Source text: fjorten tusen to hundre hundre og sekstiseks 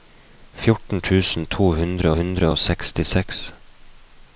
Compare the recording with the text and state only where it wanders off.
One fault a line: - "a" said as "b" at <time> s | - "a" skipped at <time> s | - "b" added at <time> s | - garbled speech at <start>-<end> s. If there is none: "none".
none